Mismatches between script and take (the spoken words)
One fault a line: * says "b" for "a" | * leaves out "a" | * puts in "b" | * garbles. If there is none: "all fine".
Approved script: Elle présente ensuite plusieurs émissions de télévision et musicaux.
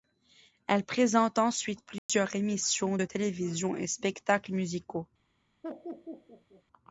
* puts in "spectacles"